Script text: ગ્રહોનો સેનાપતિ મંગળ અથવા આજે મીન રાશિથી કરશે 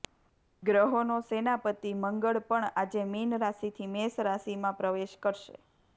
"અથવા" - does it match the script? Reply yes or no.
no